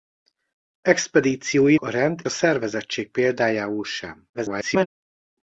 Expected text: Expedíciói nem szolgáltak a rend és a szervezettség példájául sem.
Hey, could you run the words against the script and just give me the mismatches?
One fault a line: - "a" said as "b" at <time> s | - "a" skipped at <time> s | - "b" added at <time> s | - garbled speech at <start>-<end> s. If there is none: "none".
- "nem szolgáltak" skipped at 1.8 s
- "és" skipped at 2.2 s
- garbled speech at 4.3-4.9 s